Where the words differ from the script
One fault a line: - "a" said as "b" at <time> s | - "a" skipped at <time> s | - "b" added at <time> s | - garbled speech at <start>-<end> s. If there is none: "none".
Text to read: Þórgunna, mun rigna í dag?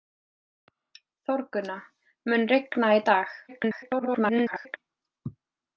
- garbled speech at 3.5-4.8 s